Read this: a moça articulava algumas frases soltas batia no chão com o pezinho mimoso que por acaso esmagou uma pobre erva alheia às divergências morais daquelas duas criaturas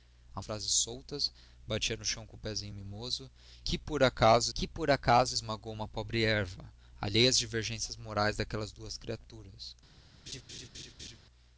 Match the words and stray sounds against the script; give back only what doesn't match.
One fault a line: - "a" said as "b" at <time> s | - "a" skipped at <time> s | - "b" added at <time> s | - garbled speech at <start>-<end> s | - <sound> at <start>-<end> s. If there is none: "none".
- "moça articulava algumas" skipped at 0.4 s
- "que por acaso" added at 4.5 s
- laugh at 10.3-11.2 s